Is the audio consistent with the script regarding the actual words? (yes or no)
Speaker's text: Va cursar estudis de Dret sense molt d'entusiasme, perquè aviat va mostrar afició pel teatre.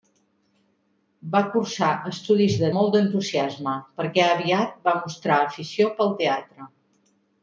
no